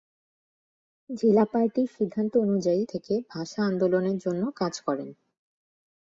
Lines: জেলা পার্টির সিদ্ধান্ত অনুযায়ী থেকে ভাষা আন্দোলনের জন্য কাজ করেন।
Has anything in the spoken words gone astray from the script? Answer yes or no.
no